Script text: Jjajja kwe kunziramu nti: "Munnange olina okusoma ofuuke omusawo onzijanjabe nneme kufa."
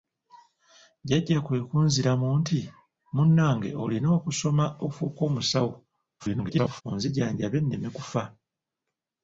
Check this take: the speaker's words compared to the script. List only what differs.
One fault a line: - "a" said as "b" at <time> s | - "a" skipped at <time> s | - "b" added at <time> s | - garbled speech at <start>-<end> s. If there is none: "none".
- garbled speech at 6.2-6.8 s